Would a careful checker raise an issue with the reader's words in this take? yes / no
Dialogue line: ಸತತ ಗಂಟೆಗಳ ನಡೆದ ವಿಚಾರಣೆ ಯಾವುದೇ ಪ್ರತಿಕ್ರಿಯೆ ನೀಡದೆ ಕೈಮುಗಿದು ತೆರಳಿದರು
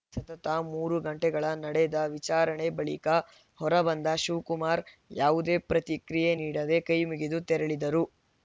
yes